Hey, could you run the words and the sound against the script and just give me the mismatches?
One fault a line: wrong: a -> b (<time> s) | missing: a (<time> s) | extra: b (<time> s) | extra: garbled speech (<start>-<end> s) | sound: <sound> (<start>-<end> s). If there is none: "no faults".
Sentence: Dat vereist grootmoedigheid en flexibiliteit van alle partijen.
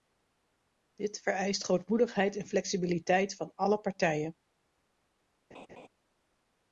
wrong: Dat -> Dit (0.9 s)
sound: laugh (5.5-5.9 s)